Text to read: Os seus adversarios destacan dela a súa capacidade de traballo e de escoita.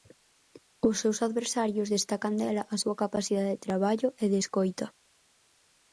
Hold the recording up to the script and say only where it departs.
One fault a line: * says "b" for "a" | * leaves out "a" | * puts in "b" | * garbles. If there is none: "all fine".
all fine